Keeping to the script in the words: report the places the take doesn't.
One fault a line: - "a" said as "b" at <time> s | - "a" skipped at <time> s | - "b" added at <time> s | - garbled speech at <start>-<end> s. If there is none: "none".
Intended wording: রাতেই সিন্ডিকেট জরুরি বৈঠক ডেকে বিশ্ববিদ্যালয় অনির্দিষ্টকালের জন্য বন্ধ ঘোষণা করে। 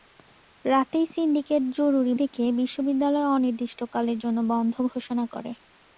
- "বৈঠক" skipped at 2.1 s